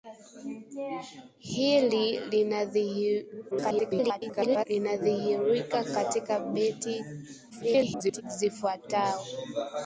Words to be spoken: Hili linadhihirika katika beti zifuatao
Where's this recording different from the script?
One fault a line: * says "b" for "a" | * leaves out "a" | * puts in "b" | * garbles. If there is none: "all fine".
* garbles
* garbles